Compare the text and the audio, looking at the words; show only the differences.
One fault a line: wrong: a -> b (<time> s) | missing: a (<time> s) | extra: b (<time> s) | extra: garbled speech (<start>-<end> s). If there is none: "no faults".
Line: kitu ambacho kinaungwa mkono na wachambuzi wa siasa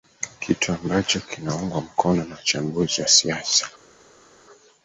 no faults